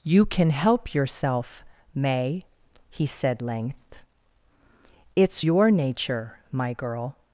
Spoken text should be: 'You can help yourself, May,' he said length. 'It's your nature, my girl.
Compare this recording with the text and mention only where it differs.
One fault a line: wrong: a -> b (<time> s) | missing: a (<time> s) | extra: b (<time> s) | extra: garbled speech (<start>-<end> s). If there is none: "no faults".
no faults